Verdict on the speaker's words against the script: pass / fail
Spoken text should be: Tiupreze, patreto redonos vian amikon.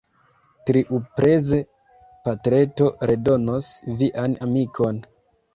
pass